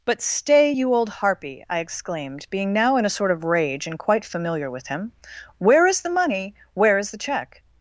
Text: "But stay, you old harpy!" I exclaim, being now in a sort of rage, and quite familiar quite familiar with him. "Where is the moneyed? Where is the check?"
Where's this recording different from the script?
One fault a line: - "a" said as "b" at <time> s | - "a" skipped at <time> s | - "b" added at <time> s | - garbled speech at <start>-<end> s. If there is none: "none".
- "exclaim" said as "exclaimed" at 1.8 s
- "quite familiar" skipped at 4.7 s
- "moneyed" said as "money" at 6.1 s